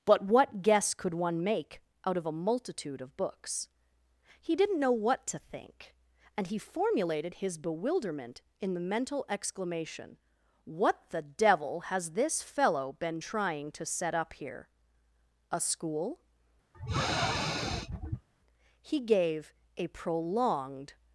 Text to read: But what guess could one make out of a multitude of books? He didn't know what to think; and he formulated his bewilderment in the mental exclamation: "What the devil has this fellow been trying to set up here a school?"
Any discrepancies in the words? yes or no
yes